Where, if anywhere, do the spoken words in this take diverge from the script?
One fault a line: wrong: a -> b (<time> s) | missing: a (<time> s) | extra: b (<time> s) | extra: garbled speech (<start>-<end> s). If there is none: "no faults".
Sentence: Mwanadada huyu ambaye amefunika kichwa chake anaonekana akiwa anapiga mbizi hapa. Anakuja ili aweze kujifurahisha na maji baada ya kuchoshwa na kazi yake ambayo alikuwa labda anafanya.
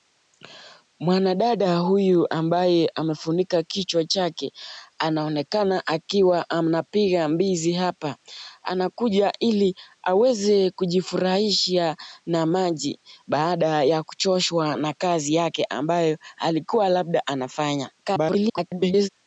extra: garbled speech (18.0-19.1 s)